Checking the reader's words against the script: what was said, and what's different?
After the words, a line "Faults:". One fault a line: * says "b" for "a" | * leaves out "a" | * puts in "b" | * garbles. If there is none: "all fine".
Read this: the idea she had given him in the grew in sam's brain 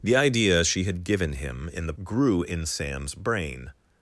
the idea she had given him in the grew in sam's brain
Faults:
all fine